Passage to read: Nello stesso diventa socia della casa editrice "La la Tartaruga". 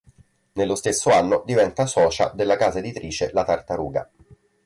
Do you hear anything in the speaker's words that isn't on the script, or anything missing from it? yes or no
yes